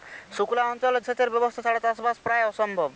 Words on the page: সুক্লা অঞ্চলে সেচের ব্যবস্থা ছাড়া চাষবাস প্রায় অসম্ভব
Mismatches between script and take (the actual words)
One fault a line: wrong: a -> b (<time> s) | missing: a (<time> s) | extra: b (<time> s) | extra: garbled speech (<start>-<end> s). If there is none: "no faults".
no faults